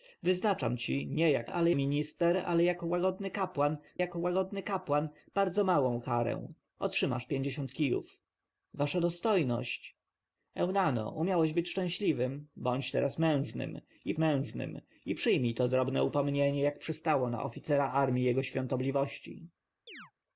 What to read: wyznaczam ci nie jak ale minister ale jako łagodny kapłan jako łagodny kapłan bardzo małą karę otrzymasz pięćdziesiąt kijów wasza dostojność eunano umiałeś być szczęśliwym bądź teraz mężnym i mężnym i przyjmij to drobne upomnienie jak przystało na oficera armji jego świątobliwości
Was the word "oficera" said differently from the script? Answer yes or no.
no